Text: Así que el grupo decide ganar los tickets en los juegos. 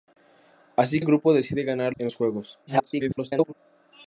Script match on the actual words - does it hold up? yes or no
no